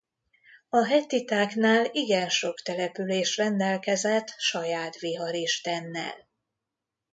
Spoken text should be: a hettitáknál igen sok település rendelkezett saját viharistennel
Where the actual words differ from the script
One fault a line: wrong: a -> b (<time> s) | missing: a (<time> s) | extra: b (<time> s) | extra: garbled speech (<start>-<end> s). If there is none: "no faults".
no faults